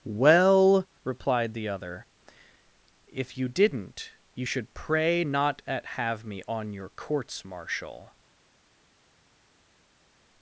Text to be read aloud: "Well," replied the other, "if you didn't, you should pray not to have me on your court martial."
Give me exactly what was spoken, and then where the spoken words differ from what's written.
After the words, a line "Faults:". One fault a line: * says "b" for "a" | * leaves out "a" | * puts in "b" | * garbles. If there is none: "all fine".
"Well," replied the other, "if you didn't, you should pray not at have me on your courts martial."
Faults:
* says "at" for "to"
* says "courts" for "court"